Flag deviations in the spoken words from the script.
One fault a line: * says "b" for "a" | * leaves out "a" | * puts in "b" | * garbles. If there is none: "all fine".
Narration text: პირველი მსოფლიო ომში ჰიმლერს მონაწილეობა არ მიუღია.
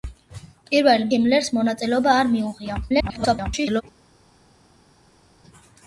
* leaves out "მსოფლიო ომში"
* garbles